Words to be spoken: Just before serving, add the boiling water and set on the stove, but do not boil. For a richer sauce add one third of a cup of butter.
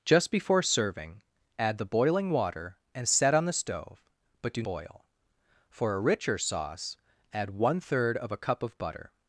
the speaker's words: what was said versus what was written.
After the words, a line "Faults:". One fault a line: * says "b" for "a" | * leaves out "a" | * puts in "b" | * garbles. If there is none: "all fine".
Just before serving, add the boiling water and set on the stove, but do boil. For a richer sauce add one third of a cup of butter.
Faults:
* leaves out "not"